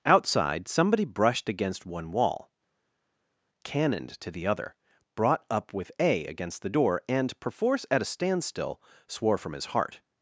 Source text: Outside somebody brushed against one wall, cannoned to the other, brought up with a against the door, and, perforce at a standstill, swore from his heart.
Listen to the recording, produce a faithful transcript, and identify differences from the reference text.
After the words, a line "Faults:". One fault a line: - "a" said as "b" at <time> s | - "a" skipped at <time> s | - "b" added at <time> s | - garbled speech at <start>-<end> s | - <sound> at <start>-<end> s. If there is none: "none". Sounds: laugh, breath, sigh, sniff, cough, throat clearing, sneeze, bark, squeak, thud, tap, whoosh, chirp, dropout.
Outside somebody brushed against one wall, cannoned to the other, brought up with a against the door, and, perforce at a standstill, swore from his heart.
Faults:
none